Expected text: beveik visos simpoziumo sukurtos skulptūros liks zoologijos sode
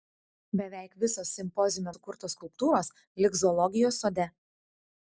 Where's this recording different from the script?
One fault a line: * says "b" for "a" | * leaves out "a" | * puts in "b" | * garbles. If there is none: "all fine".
all fine